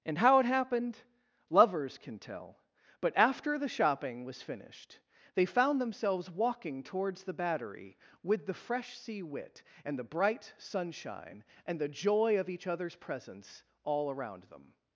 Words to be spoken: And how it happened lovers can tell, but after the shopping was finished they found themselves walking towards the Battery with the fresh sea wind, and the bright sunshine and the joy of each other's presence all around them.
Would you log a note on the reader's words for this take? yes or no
yes